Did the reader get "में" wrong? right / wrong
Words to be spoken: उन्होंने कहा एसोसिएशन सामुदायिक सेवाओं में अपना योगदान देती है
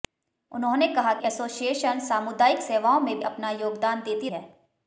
right